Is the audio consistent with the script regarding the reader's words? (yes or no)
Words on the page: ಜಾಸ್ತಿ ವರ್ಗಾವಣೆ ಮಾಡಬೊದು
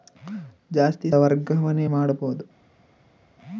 yes